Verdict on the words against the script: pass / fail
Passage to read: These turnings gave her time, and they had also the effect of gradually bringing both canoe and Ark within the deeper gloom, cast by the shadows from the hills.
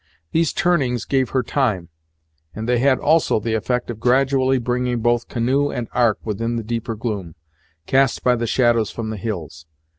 pass